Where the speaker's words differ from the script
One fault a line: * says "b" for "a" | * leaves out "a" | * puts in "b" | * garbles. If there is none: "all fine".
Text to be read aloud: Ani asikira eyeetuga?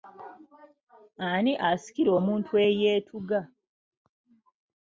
* puts in "omuntu"